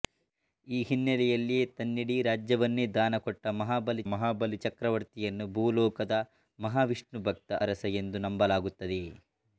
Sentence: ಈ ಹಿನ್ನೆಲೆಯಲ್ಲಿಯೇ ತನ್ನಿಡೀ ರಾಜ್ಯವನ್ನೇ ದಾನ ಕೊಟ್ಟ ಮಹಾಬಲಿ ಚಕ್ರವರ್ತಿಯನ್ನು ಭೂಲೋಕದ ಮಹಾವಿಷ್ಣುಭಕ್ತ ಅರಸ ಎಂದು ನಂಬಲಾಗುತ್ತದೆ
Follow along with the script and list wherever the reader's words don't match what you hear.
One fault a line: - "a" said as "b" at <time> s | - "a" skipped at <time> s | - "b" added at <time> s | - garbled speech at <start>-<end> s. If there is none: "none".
- "ಮಹಾಬಲಿ" added at 4.1 s